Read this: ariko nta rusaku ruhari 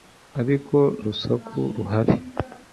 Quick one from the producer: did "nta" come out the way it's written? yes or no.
no